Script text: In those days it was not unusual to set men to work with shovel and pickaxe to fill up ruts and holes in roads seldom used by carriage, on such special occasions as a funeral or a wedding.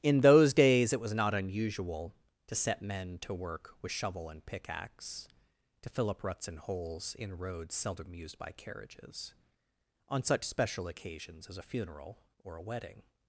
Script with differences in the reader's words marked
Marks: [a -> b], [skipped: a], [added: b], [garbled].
In those days it was not unusual to set men to work with shovel and pickaxe to fill up ruts and holes in roads seldom used by [carriage, -> carriages] on such special occasions as a funeral or a wedding.